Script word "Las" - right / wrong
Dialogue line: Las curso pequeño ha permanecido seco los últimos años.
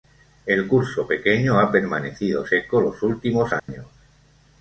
wrong